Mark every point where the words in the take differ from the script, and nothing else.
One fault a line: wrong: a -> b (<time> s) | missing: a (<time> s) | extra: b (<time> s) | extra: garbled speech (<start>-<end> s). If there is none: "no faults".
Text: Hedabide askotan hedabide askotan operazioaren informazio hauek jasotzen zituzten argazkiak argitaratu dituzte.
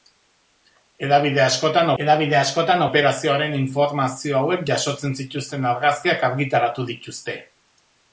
no faults